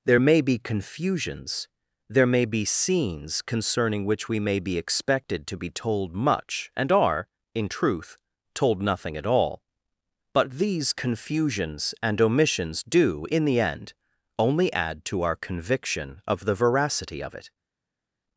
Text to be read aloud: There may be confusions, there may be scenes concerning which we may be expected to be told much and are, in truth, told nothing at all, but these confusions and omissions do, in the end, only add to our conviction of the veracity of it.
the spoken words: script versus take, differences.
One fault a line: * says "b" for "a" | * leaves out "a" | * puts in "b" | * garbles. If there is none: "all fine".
all fine